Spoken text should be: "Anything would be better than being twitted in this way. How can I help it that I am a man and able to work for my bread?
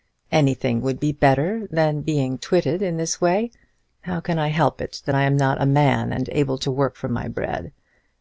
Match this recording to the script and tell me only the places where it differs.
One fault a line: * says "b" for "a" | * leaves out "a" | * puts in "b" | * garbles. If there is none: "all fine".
* puts in "not"